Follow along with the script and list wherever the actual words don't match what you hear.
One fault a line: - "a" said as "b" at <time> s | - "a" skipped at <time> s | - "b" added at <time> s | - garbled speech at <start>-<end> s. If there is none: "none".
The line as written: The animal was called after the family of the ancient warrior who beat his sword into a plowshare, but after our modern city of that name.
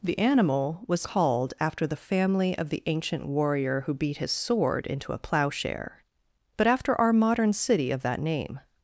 none